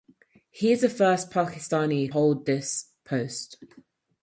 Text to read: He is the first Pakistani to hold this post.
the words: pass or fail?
fail